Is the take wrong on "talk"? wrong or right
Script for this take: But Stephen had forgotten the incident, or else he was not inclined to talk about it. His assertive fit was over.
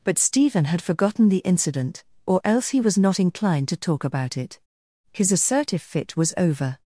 right